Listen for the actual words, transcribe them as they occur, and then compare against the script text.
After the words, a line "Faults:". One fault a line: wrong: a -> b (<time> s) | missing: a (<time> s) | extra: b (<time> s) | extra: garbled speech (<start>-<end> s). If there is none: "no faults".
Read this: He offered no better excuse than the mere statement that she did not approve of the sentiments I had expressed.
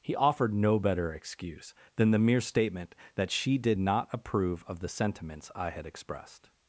He offered no better excuse than the mere statement that she did not approve of the sentiments I had expressed.
Faults:
no faults